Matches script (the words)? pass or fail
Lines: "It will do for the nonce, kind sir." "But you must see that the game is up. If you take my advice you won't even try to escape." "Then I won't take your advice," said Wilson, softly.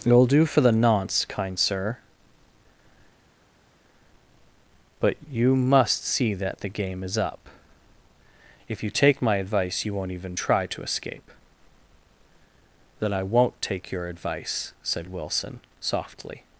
pass